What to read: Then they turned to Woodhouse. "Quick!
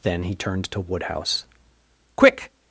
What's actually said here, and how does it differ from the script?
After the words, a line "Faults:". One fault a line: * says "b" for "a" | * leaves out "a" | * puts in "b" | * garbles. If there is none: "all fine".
Then he turned to Woodhouse. "Quick!
Faults:
* says "he" for "they"